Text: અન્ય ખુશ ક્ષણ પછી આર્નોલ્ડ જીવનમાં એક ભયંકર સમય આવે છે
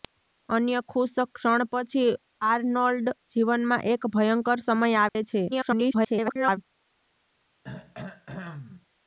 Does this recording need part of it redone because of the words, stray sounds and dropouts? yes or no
yes